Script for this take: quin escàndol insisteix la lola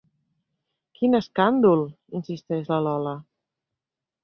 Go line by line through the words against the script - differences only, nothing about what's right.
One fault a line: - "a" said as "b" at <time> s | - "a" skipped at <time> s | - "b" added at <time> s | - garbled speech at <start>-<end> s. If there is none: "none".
none